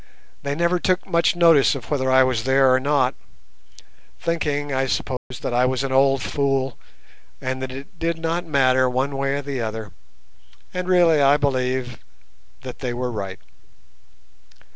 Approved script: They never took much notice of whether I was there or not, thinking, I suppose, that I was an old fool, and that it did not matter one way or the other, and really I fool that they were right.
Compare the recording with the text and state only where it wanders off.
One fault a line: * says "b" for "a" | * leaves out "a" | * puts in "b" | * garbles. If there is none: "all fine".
* says "believe" for "fool"